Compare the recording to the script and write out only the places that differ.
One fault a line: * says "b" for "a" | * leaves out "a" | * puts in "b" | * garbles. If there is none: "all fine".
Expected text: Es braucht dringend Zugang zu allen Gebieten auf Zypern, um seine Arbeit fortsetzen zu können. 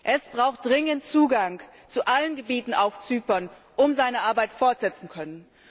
* leaves out "zu"